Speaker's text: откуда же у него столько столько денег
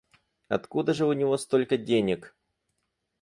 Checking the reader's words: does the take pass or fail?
fail